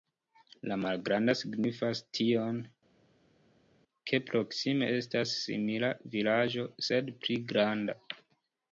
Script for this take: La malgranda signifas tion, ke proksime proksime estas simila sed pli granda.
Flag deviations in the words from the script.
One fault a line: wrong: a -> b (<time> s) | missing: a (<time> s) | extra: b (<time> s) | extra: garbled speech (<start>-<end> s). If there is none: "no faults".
missing: proksime (4.9 s)
extra: vilaĝo (6.1 s)